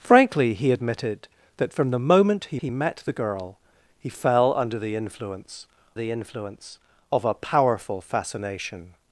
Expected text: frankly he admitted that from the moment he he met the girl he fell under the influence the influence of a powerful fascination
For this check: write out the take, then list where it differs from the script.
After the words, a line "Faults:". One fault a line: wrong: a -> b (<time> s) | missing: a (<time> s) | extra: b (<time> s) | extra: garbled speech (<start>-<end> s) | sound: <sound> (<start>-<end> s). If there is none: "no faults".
frankly he admitted that from the moment he he met the girl he fell under the influence the influence of a powerful fascination
Faults:
no faults